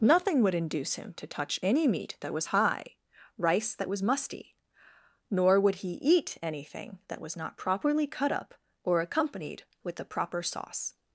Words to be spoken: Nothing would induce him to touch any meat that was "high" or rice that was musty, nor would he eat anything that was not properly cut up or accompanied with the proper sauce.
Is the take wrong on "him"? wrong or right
right